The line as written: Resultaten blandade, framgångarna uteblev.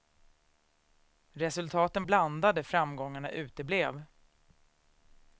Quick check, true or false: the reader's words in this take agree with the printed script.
true